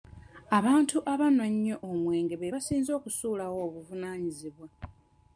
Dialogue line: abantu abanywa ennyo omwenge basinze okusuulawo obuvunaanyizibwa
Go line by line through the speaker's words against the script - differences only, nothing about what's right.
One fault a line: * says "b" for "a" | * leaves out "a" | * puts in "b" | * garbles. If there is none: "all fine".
* puts in "be"